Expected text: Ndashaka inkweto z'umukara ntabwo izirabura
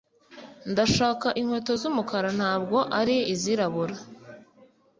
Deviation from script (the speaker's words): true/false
true